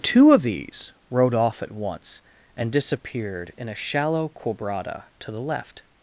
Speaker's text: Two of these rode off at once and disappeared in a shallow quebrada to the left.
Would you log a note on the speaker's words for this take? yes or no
no